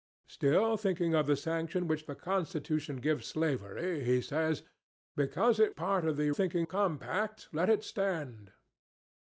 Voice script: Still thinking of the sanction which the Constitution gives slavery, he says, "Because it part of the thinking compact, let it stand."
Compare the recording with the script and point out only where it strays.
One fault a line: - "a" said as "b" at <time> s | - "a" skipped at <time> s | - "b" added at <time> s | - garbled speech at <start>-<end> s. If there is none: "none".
none